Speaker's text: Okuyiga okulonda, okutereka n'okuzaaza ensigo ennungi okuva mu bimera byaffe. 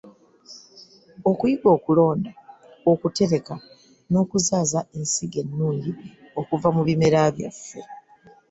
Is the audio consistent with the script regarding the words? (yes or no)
yes